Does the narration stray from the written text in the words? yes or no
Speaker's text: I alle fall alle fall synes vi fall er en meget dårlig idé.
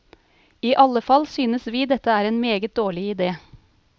yes